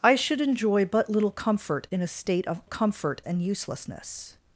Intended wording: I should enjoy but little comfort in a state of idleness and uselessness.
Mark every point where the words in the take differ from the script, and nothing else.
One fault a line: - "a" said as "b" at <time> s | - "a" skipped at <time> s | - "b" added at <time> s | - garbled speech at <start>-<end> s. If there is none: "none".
- "idleness" said as "comfort" at 2.6 s